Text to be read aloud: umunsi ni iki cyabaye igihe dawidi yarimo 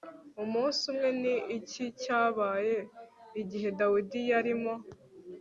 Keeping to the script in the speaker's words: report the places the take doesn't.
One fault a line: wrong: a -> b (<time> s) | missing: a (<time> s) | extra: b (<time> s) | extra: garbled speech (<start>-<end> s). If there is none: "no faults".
extra: umwe (0.9 s)